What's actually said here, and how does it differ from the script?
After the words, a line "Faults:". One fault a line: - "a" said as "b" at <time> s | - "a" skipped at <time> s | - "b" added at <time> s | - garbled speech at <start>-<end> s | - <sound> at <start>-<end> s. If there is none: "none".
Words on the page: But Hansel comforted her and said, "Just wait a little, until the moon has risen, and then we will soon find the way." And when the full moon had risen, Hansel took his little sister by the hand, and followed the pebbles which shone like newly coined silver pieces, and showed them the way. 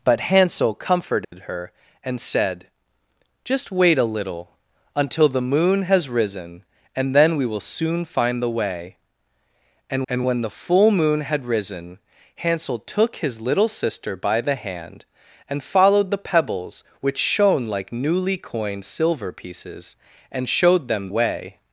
But Hansel comforted her and said, "Just wait a little, until the moon has risen, and then we will soon find the way." And and when the full moon had risen, Hansel took his little sister by the hand, and followed the pebbles which shone like newly coined silver pieces, and showed them way.
Faults:
- dropout at 1.2-1.3 s
- "and" added at 10.1 s
- "the" skipped at 21.1 s